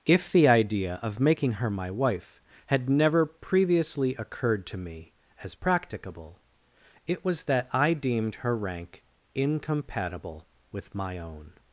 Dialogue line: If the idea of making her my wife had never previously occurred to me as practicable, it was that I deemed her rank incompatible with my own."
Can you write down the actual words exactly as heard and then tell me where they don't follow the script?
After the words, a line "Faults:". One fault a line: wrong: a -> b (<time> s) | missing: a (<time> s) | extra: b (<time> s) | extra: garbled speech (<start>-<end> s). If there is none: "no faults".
If the idea of making her my wife had never previously occurred to me as practicable, it was that I deemed her rank incompatible with my own."
Faults:
no faults